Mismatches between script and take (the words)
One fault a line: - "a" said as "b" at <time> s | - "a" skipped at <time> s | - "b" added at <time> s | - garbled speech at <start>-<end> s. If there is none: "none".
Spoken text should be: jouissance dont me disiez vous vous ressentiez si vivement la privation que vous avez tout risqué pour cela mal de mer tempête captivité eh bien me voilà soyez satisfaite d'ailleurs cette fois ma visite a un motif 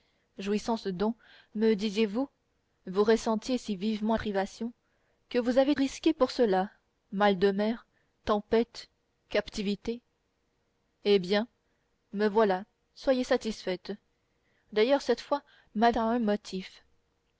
- "la" skipped at 4.1 s
- "tout" skipped at 5.8 s
- "visite" skipped at 15.9 s